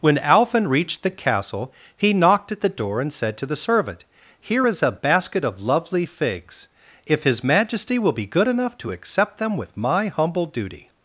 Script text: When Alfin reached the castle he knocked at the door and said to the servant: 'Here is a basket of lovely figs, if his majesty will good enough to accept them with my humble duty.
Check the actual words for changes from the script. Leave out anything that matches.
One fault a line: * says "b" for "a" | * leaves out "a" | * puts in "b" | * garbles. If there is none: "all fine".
* puts in "be"